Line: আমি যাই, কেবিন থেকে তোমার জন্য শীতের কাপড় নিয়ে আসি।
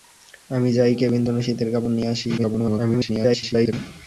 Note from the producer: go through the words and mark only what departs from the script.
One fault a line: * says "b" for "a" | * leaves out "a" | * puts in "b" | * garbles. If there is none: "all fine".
* leaves out "থেকে তোমার"
* garbles